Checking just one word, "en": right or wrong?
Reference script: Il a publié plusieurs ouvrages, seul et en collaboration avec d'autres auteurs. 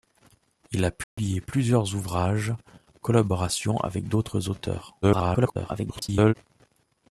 wrong